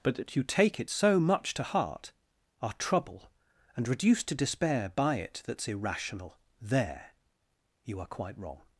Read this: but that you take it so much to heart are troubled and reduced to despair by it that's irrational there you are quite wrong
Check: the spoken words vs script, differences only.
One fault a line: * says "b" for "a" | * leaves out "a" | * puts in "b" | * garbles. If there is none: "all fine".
* says "trouble" for "troubled"